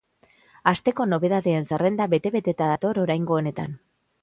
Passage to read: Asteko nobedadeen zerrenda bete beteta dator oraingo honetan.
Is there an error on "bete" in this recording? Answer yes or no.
no